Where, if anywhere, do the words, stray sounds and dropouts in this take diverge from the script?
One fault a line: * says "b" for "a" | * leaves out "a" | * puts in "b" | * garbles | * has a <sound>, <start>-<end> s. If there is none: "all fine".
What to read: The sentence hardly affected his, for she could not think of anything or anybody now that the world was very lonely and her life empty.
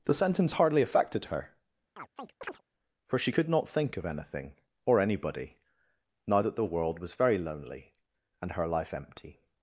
* says "her" for "his"
* has a chirp, 2.0-2.6 s